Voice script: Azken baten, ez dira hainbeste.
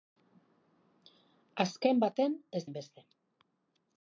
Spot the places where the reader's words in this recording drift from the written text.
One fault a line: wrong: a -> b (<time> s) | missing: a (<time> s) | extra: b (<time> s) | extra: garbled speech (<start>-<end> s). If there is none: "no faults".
missing: dira (2.6 s)